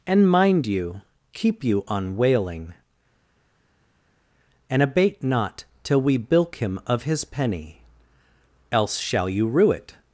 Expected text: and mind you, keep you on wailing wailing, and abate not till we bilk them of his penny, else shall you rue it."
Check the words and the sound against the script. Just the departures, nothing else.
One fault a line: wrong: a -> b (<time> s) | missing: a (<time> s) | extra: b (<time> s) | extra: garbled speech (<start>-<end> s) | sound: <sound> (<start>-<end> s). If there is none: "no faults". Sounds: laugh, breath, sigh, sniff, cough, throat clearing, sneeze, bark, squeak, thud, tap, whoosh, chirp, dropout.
missing: wailing (2.7 s)
wrong: them -> him (6.6 s)